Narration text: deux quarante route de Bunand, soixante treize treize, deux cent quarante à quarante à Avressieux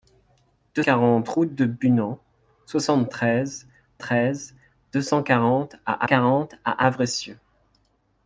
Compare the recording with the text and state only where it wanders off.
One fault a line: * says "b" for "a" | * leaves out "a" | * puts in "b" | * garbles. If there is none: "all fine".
all fine